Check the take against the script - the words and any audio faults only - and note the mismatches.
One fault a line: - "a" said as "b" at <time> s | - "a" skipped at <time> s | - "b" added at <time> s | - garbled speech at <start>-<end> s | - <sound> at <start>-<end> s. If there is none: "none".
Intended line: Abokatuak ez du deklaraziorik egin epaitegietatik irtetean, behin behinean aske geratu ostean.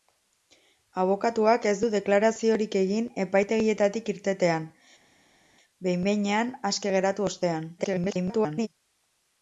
- garbled speech at 7.8-8.7 s